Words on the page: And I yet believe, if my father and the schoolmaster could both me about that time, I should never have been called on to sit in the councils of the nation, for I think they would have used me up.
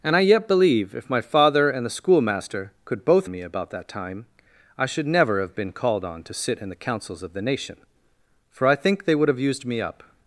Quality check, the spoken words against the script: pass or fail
pass